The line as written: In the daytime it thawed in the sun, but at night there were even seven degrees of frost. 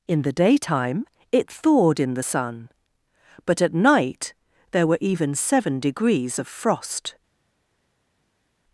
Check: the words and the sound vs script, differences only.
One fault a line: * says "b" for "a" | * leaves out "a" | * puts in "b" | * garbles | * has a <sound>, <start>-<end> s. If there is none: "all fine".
all fine